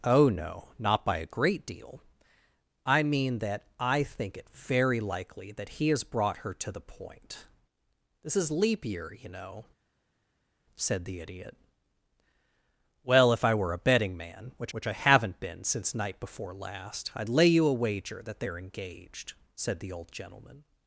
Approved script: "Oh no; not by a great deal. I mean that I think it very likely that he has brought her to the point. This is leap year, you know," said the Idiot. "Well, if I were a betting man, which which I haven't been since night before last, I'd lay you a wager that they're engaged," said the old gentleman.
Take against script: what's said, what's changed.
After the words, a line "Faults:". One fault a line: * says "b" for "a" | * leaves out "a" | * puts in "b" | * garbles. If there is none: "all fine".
"Oh no; not by a great deal. I mean that I think it very likely that he has brought her to the point. This is leap year, you know," said the Idiot. "Well, if I were a betting man, which which I haven't been since night before last, I'd lay you a wager that they're engaged," said the old gentleman.
Faults:
all fine